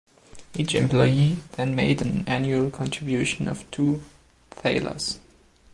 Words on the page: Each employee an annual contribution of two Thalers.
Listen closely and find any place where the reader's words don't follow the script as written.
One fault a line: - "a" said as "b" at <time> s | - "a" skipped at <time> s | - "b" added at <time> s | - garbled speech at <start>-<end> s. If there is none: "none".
- "then made" added at 1.6 s